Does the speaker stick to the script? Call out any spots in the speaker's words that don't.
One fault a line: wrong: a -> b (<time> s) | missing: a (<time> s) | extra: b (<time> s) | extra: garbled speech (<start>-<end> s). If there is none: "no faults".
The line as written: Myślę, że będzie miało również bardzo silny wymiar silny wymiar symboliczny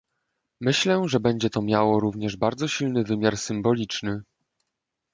extra: to (1.5 s)
missing: silny wymiar (3.4 s)